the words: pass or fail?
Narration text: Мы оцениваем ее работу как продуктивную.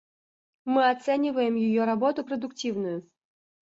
fail